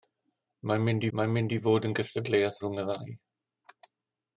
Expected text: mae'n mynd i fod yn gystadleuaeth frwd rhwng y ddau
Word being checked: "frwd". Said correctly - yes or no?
no